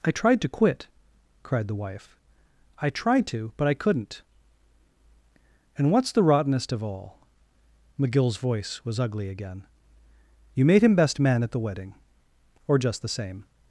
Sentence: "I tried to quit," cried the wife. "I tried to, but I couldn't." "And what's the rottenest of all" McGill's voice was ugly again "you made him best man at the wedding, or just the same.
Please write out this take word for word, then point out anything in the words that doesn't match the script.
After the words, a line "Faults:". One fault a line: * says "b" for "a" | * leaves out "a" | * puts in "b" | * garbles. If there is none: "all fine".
"I tried to quit," cried the wife. "I tried to, but I couldn't." "And what's the rottenest of all" McGill's voice was ugly again "you made him best man at the wedding, or just the same.
Faults:
all fine